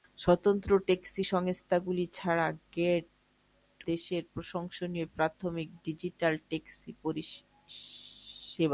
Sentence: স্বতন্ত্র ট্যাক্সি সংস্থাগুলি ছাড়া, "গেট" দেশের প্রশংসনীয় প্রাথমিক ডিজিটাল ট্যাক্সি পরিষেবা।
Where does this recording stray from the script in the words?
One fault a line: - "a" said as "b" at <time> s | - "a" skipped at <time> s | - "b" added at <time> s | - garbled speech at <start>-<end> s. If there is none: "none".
none